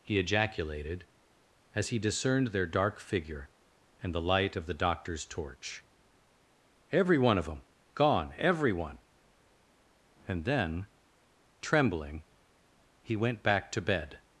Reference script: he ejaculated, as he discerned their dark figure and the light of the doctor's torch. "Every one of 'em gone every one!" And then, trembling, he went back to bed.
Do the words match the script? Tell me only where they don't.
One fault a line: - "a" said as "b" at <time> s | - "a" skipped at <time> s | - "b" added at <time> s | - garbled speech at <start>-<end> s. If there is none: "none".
none